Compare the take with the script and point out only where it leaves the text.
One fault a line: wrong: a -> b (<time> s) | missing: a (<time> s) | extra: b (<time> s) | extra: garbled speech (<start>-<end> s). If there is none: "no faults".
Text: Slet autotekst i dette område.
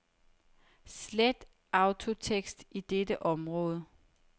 no faults